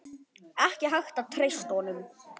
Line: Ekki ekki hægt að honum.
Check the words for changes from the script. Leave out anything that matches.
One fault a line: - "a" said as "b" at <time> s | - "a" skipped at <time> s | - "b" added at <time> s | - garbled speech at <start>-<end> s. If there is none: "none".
- "ekki" skipped at 0.9 s
- "treysta" added at 1.4 s